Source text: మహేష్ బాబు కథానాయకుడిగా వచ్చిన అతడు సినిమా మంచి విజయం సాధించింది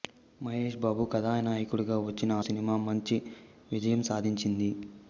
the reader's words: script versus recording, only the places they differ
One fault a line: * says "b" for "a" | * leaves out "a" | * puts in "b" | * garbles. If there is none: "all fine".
* leaves out "అతడు"